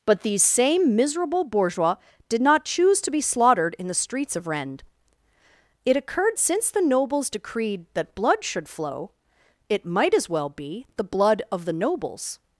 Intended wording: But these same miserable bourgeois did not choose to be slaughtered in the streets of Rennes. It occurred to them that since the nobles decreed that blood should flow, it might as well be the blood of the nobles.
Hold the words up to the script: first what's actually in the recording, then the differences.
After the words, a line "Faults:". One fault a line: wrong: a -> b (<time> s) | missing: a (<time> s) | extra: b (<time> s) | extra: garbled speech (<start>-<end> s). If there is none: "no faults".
But these same miserable bourgeois did not choose to be slaughtered in the streets of Rennes. It occurred since the nobles decreed that blood should flow, it might as well be the blood of the nobles.
Faults:
missing: to them that (6.4 s)